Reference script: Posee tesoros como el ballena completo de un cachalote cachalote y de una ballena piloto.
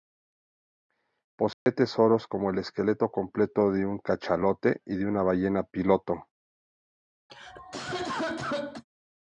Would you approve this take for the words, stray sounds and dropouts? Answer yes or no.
no